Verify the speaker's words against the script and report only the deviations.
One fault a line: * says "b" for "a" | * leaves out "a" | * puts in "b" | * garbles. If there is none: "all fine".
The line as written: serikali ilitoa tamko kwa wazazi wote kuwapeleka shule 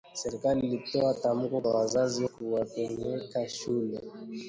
* leaves out "wote"